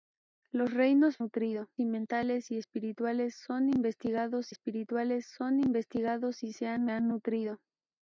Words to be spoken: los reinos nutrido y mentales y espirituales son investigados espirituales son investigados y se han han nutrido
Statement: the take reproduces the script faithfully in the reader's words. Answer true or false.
true